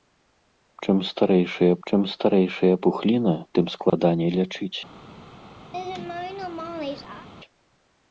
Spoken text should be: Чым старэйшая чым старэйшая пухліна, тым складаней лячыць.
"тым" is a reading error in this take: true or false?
false